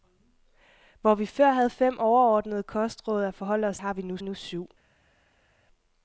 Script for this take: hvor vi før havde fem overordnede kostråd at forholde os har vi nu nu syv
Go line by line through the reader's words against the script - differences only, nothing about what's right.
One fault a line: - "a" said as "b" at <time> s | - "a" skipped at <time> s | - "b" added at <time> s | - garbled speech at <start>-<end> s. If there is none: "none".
none